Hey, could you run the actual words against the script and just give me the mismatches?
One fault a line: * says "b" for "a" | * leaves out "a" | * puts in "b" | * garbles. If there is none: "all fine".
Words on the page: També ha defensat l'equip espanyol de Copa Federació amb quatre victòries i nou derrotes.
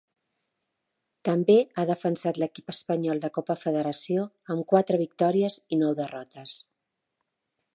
all fine